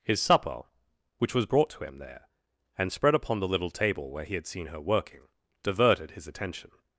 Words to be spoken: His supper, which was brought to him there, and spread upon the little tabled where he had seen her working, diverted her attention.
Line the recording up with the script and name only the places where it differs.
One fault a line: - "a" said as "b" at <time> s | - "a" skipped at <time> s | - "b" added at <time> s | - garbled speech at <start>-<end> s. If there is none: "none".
- "tabled" said as "table" at 3.7 s
- "her" said as "his" at 6.1 s